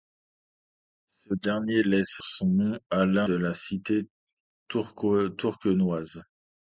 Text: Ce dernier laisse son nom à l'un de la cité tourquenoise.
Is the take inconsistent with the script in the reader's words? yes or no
no